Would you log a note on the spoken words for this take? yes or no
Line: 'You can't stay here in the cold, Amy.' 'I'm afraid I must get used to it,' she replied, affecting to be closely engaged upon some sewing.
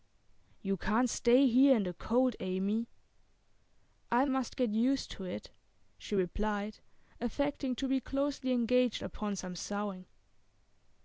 yes